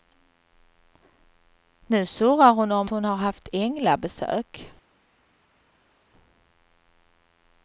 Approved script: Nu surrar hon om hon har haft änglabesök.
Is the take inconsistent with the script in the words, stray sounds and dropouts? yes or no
no